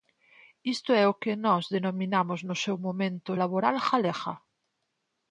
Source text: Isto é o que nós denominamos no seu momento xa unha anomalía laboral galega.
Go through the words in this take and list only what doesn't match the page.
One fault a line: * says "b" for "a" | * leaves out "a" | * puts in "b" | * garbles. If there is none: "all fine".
* leaves out "xa unha anomalía"